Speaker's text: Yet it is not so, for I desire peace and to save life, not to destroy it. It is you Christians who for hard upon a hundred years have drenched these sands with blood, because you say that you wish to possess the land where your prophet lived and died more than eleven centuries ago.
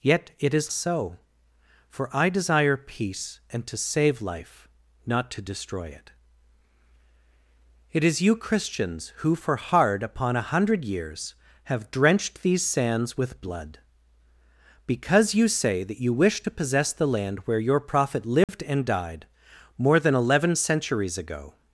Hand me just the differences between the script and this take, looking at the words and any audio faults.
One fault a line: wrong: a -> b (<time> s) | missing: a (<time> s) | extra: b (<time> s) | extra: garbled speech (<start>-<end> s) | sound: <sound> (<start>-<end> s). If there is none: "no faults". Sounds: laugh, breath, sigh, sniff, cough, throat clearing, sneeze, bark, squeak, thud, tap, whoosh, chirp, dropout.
missing: not (0.7 s)
sound: dropout (18.4-18.5 s)